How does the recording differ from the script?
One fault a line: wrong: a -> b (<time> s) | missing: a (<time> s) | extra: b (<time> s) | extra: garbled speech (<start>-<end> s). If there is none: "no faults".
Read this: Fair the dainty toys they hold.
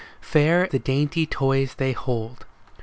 no faults